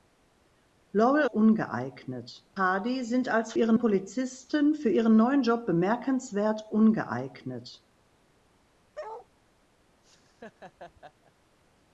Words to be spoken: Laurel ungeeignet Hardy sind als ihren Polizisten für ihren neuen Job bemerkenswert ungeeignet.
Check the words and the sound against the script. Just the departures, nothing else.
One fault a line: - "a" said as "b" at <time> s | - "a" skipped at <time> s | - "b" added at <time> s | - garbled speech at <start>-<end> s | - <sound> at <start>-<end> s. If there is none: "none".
- bark at 8.9-9.3 s
- laugh at 10.0-11.3 s